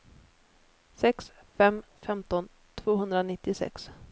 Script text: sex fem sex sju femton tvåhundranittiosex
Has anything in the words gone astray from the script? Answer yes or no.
yes